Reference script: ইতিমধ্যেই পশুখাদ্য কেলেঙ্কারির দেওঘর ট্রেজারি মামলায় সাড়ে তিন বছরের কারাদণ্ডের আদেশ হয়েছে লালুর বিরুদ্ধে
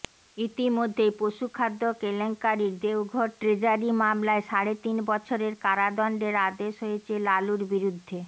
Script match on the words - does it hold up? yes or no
yes